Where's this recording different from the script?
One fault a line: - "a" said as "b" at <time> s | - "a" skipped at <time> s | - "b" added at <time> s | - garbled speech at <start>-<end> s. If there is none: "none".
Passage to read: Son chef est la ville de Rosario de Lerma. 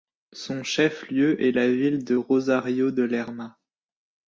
- "lieu" added at 1.1 s